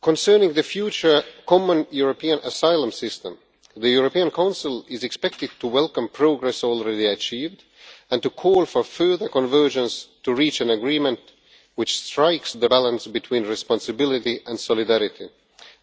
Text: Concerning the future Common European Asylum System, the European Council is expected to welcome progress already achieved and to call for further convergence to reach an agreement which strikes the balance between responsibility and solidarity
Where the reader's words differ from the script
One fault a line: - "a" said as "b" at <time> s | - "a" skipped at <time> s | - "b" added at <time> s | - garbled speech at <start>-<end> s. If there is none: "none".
none